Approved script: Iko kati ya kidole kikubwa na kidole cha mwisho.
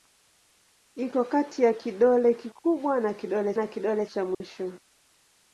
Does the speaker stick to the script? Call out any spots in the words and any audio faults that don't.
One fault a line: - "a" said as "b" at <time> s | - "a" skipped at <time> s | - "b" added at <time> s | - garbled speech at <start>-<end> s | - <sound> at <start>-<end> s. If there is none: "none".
- "na kidole" added at 3.5 s
- dropout at 4.3-4.4 s